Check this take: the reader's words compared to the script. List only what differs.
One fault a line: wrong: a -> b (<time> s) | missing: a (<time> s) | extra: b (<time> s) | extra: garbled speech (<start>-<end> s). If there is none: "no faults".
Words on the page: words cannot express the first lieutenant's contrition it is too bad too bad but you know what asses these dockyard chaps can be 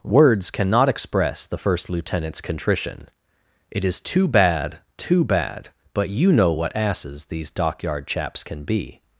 no faults